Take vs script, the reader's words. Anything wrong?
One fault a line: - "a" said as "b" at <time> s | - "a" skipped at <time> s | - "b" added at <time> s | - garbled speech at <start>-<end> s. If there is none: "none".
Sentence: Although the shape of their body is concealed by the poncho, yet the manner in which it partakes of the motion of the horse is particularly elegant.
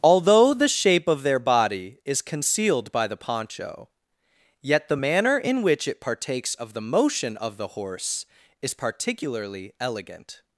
none